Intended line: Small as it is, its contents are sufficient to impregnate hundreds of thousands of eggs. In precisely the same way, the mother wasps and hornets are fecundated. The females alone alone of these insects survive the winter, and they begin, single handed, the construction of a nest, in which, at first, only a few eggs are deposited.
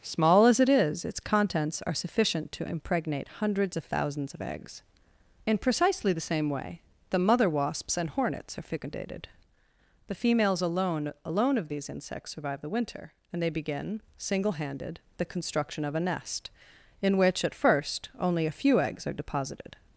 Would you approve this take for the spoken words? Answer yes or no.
yes